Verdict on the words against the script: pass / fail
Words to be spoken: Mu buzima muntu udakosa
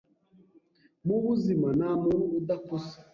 fail